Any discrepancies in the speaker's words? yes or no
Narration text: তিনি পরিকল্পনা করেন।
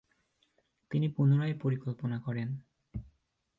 yes